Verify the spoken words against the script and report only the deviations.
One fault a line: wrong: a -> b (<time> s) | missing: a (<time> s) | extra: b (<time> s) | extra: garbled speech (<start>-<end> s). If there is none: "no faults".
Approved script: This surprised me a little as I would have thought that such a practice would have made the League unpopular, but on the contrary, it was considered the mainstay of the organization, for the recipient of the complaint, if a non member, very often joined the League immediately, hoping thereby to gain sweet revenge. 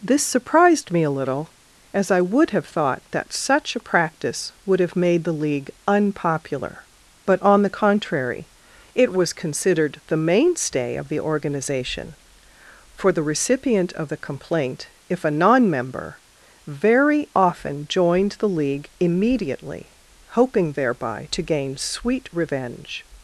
no faults